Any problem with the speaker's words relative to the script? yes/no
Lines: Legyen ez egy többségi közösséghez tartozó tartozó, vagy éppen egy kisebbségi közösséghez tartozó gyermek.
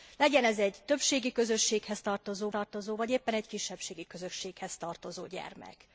no